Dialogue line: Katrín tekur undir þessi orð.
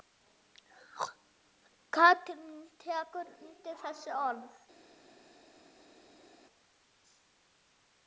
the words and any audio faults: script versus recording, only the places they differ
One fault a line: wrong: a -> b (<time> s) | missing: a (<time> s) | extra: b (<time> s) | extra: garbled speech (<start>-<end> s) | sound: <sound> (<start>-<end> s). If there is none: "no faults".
no faults